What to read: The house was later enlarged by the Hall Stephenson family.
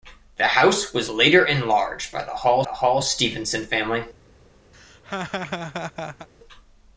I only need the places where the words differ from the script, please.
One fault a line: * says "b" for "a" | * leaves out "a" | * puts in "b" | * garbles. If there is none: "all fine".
* puts in "the Hall"